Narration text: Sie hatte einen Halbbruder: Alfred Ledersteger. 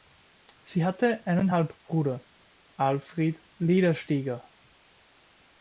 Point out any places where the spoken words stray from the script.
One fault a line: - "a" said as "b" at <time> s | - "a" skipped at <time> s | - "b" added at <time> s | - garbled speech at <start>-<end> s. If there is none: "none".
none